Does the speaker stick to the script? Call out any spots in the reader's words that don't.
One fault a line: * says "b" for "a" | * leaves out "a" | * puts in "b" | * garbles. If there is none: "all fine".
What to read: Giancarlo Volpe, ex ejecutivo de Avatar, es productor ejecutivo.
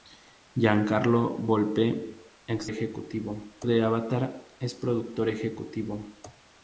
all fine